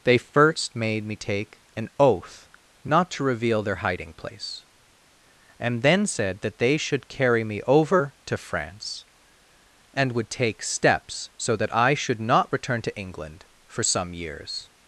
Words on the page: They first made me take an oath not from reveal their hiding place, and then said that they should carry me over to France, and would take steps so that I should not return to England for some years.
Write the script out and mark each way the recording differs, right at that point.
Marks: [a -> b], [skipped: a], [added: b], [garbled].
They first made me take an oath not [from -> to] reveal their hiding place, and then said that they should carry me over to France, and would take steps so that I should not return to England for some years.